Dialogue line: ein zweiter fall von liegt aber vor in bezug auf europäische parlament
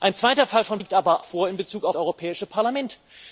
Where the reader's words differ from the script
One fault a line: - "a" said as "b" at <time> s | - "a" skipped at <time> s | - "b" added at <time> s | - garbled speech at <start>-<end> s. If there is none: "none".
none